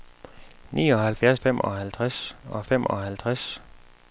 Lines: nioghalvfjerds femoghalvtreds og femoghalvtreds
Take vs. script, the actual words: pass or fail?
pass